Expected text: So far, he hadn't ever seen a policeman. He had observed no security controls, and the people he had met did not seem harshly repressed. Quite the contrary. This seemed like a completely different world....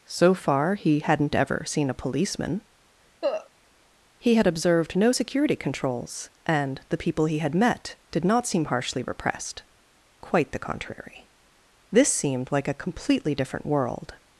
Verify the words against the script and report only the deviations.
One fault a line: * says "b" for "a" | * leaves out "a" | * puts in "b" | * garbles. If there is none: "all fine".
all fine